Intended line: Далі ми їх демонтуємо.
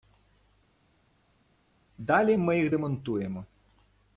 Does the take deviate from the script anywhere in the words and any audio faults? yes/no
no